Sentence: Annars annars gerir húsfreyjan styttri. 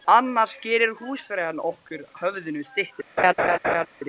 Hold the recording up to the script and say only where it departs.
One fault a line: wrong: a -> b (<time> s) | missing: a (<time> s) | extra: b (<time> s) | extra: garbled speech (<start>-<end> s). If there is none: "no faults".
missing: annars (0.6 s)
extra: okkur höfðinu (1.6 s)